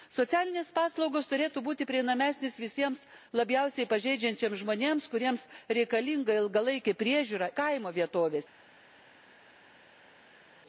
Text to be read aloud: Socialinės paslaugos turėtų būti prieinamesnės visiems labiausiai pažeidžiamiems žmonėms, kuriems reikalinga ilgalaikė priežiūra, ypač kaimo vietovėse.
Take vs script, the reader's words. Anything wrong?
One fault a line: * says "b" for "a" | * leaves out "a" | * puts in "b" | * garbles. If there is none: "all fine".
* leaves out "ypač"